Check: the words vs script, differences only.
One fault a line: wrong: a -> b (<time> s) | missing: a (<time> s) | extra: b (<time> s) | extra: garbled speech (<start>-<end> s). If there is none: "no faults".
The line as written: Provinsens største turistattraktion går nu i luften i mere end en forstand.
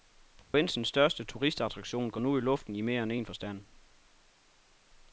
no faults